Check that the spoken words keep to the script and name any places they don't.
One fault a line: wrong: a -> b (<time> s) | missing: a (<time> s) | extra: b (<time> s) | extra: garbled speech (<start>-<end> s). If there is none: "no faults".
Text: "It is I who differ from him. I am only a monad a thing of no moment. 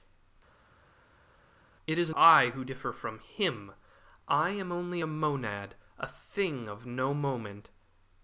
no faults